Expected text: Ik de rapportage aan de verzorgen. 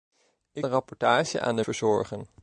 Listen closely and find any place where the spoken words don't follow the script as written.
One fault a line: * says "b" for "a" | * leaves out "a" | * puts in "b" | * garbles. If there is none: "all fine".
all fine